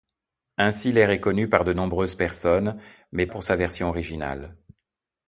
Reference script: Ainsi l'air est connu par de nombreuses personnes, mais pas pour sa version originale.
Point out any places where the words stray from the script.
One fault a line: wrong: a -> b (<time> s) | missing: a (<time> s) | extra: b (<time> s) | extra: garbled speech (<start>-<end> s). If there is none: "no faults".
missing: pas (3.3 s)